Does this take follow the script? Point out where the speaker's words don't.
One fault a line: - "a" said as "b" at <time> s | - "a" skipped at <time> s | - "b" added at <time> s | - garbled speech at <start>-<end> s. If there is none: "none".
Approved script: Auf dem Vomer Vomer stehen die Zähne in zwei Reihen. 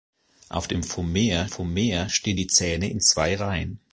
none